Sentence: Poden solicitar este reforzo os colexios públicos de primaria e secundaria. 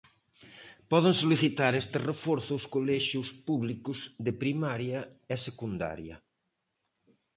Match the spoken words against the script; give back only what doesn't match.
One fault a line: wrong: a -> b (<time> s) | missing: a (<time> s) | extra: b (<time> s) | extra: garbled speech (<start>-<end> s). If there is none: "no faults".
no faults